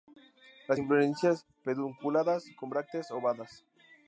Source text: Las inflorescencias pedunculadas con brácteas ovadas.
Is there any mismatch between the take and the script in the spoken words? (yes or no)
no